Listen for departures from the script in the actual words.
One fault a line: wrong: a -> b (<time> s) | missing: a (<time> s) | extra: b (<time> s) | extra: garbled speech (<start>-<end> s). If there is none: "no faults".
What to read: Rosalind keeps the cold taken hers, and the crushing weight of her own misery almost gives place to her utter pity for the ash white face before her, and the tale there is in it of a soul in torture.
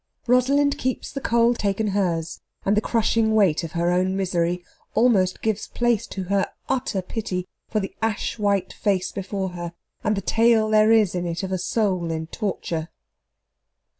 no faults